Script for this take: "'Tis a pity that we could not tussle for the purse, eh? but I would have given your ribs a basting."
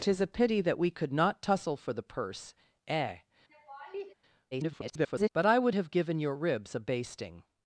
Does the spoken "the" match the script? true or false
true